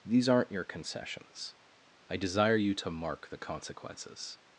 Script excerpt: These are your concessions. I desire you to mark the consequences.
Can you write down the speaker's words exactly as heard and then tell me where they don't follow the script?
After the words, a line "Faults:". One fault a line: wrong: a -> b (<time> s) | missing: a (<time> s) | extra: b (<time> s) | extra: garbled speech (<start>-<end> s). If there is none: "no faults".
These aren't your concessions. I desire you to mark the consequences.
Faults:
wrong: are -> aren't (0.3 s)